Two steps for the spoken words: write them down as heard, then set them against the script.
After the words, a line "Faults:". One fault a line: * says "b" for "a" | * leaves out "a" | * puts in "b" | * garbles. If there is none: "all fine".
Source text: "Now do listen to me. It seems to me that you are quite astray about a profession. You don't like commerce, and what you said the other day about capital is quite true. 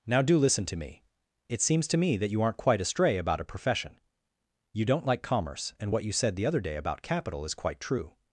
"Now do listen to me. It seems to me that you aren't quite astray about a profession. You don't like commerce, and what you said the other day about capital is quite true.
Faults:
* says "aren't" for "are"